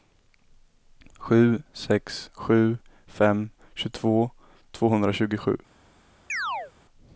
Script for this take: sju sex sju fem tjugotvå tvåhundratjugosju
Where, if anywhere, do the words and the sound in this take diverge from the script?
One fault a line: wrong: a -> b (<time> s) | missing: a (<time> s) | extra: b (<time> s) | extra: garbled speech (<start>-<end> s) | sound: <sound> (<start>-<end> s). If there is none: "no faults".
sound: chirp (6.3-6.7 s)